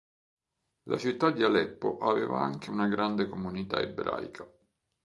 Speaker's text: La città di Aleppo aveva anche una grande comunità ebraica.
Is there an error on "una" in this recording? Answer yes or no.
no